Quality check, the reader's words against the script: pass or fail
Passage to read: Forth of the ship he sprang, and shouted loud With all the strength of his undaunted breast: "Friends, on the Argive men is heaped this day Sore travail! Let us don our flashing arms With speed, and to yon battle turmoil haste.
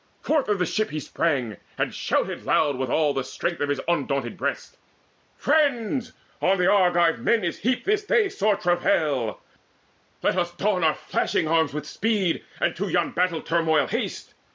pass